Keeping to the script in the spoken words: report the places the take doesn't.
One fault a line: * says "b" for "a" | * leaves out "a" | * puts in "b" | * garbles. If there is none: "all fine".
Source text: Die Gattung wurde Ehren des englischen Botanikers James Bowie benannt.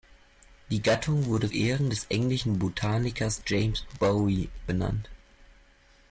all fine